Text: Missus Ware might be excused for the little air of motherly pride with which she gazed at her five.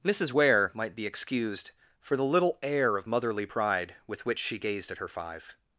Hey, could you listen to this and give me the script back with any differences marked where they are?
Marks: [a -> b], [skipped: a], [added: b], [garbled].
Missus Ware might be excused for the little air of motherly pride with which she gazed at her five.